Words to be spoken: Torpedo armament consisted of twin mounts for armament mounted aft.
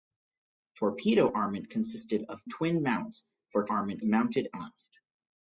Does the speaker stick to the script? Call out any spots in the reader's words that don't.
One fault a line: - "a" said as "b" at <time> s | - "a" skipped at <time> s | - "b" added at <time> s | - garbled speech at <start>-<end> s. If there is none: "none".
none